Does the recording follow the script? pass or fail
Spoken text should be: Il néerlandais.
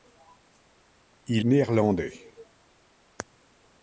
pass